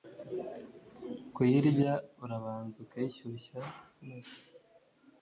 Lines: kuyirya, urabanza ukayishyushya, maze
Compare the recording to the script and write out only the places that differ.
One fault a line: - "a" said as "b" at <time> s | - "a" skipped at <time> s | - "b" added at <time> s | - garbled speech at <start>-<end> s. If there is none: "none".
none